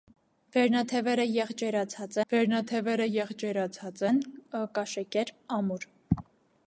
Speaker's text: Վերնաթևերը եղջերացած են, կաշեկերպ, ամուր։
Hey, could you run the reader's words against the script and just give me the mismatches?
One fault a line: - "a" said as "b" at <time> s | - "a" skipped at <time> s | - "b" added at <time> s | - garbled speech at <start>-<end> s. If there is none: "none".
- "վերնաթևերը եղջերացած" added at 2.3 s